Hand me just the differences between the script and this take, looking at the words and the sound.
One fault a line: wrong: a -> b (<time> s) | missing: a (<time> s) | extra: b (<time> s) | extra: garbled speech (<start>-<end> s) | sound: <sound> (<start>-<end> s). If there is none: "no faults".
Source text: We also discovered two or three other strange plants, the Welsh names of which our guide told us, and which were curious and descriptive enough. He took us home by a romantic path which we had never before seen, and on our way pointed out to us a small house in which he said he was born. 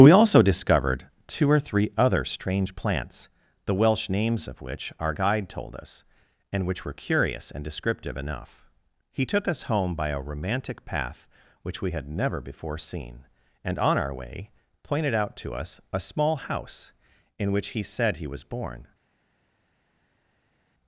no faults